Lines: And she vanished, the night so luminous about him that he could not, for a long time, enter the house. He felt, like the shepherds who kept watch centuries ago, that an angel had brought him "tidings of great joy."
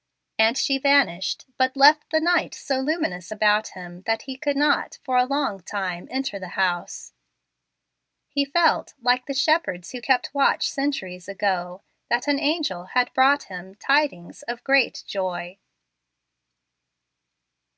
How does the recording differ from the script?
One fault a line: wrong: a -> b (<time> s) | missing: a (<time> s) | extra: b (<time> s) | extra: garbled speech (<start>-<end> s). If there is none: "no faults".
extra: but left (1.6 s)